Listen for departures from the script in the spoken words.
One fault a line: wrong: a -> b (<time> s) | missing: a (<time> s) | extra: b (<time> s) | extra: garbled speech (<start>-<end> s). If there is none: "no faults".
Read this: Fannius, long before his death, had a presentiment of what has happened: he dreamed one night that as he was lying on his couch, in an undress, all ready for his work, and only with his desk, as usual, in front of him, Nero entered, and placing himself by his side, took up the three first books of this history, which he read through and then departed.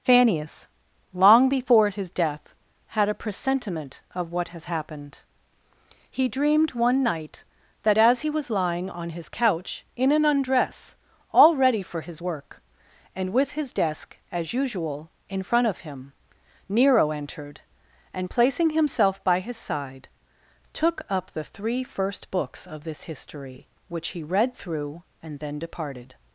missing: only (13.3 s)